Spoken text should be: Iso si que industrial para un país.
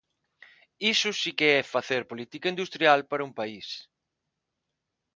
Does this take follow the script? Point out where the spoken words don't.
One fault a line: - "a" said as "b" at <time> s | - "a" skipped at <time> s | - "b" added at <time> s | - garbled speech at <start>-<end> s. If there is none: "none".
- "é facer política" added at 1.6 s